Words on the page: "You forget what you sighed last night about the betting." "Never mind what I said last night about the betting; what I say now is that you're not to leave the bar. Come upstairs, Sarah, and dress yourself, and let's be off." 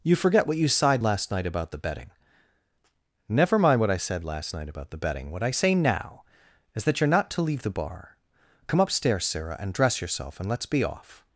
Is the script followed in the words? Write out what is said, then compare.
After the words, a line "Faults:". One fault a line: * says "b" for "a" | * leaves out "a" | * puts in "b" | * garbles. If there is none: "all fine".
"You forget what you sighed last night about the betting." "Never mind what I said last night about the betting; what I say now is that you're not to leave the bar. Come upstairs, Sarah, and dress yourself, and let's be off."
Faults:
all fine